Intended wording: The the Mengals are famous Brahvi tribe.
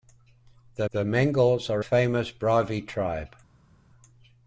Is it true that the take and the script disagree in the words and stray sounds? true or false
false